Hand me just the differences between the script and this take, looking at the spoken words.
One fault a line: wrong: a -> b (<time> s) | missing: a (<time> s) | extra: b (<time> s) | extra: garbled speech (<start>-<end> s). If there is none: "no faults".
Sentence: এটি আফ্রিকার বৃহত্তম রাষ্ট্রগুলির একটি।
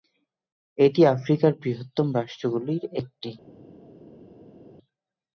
no faults